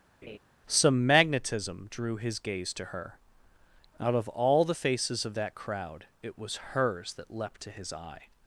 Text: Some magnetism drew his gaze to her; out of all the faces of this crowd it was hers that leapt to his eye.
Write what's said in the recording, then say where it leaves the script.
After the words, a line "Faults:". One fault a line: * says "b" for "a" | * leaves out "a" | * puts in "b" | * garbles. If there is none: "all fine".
Some magnetism drew his gaze to her; out of all the faces of that crowd it was hers that leapt to his eye.
Faults:
* says "that" for "this"